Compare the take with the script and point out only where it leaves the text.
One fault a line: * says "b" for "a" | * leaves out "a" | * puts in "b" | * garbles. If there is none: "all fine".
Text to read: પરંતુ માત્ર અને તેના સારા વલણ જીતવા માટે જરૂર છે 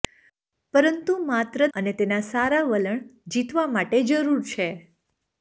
all fine